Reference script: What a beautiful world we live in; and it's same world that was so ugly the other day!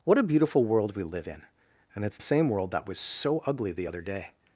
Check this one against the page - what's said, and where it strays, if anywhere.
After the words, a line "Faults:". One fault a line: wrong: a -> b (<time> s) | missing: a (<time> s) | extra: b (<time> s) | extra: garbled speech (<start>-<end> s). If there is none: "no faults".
What a beautiful world we live in; and it's same world that was so ugly the other day!
Faults:
no faults